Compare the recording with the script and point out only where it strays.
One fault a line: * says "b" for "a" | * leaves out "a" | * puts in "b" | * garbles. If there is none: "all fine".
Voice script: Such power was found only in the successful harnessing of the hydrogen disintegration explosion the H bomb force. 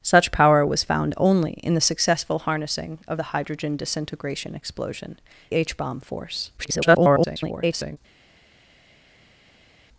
* leaves out "the"
* garbles